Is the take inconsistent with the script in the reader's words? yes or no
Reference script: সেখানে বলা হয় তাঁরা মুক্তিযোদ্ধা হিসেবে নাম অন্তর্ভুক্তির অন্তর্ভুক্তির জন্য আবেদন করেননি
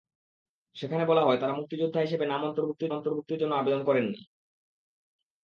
no